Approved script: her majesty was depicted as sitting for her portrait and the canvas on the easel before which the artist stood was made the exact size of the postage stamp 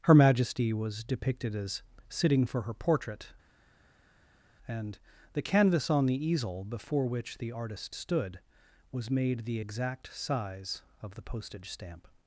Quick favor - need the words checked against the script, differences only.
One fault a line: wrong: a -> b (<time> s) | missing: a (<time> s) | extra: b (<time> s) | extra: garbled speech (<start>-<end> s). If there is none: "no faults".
no faults